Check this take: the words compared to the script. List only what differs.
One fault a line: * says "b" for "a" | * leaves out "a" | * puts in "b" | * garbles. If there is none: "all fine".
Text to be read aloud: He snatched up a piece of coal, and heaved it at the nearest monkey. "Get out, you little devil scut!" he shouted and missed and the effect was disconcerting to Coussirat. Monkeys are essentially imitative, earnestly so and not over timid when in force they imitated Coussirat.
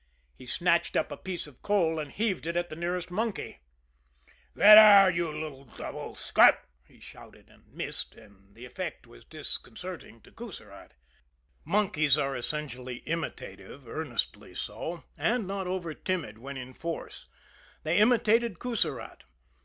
all fine